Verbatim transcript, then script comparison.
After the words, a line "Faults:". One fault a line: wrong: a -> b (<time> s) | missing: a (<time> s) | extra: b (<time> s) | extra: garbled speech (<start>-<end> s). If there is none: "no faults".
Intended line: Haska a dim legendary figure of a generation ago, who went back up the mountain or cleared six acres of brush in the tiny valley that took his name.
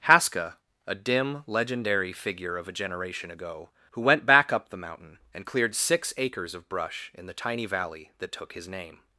Haska a dim legendary figure of a generation ago, who went back up the mountain and cleared six acres of brush in the tiny valley that took his name.
Faults:
wrong: or -> and (5.3 s)